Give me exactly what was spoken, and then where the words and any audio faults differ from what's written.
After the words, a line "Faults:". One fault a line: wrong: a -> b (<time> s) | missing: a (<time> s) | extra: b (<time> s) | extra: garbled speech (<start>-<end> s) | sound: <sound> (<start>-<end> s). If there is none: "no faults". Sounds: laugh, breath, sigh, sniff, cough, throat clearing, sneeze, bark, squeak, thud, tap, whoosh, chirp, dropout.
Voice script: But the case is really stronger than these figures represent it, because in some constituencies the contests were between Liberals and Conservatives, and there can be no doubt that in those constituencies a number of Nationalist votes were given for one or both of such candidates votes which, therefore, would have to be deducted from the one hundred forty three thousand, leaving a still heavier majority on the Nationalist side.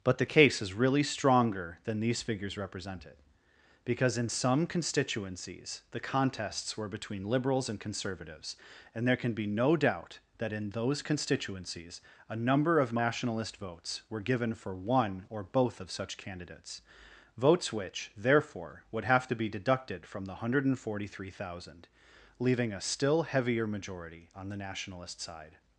But the case is really stronger than these figures represent it, because in some constituencies the contests were between Liberals and Conservatives, and there can be no doubt that in those constituencies a number of Nationalist votes were given for one or both of such candidates votes which, therefore, would have to be deducted from the one hundred forty three thousand, leaving a still heavier majority on the Nationalist side.
Faults:
no faults